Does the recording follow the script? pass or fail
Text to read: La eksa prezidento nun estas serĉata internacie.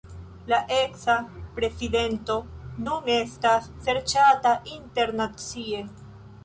pass